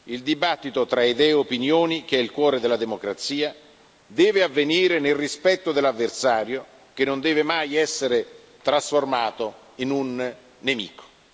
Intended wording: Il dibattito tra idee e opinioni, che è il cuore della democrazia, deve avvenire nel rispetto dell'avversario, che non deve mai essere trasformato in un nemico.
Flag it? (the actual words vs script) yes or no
no